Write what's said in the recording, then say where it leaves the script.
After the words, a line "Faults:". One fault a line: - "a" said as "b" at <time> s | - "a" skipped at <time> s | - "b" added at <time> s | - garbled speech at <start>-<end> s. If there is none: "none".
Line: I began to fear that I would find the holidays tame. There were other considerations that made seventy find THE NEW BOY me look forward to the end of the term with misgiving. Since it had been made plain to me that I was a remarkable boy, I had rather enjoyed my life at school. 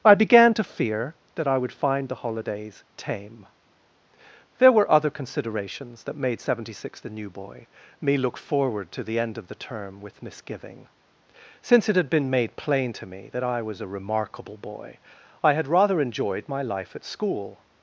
I began to fear that I would find the holidays tame. There were other considerations that made seventy six THE NEW BOY me look forward to the end of the term with misgiving. Since it had been made plain to me that I was a remarkable boy, I had rather enjoyed my life at school.
Faults:
- "find" said as "six" at 6.8 s